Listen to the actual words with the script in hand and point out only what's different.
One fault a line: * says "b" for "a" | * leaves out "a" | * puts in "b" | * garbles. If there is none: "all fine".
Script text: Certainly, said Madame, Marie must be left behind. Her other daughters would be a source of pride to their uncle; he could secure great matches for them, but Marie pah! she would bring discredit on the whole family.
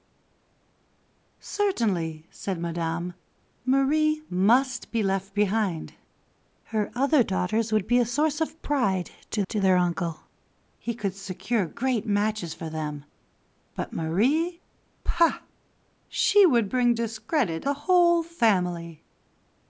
* puts in "to"
* leaves out "on"